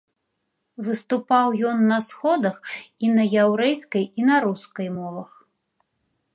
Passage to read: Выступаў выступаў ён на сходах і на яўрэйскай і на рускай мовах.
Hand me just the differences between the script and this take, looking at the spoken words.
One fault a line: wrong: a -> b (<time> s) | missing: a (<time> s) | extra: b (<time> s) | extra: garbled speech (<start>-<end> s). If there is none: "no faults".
missing: выступаў (1.5 s)